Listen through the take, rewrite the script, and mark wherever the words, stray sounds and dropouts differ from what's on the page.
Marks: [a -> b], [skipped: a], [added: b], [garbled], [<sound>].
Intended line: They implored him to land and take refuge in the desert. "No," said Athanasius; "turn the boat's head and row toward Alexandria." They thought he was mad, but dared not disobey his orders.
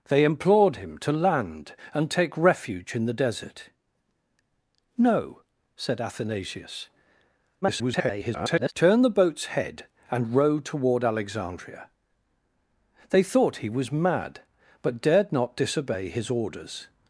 They implored him to land and take refuge in the desert. "No," said Athanasius; [garbled] "turn the boat's head and row toward Alexandria." They thought he was mad, but dared not disobey his orders.